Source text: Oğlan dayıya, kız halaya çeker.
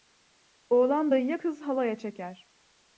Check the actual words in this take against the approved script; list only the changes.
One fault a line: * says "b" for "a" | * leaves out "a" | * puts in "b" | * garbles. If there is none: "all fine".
all fine